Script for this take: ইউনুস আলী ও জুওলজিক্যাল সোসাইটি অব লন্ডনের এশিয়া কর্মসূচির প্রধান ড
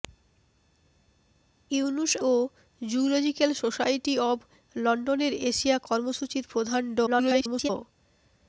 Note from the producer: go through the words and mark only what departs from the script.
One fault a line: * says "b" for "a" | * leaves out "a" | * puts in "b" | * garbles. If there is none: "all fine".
* leaves out "আলী"
* garbles